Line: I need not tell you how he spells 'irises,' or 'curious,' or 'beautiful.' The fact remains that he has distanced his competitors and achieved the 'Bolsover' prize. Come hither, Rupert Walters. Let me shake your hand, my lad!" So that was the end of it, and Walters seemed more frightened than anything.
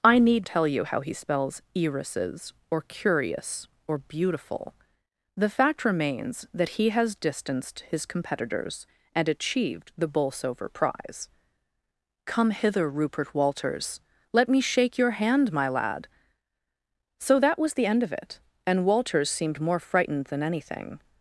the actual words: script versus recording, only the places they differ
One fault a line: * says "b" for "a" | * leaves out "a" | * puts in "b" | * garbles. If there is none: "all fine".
* leaves out "not"